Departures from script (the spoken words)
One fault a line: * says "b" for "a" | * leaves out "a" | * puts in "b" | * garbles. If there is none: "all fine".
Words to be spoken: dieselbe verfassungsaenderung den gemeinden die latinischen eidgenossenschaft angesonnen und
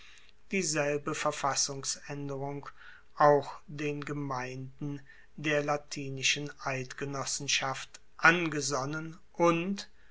* puts in "auch"
* says "der" for "die"